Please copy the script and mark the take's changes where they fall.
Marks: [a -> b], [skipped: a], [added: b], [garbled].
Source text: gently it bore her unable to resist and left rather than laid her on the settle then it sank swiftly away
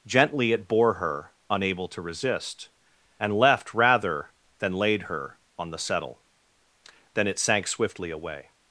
gently it bore her unable to resist and left rather than laid her on the settle then it sank swiftly away